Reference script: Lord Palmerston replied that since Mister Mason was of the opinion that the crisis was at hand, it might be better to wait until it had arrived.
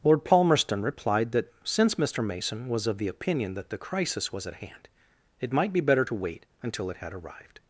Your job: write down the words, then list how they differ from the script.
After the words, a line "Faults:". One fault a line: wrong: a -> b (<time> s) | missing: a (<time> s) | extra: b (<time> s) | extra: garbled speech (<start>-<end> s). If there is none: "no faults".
Lord Palmerston replied that since Mister Mason was of the opinion that the crisis was at hand, it might be better to wait until it had arrived.
Faults:
no faults